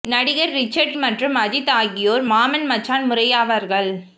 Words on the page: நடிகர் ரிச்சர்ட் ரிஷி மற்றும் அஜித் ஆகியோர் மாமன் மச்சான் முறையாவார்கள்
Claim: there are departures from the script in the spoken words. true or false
true